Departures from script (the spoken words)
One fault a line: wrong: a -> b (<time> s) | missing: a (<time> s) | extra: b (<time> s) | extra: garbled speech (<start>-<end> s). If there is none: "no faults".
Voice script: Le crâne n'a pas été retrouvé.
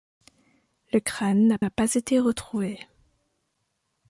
extra: n'a (1.6 s)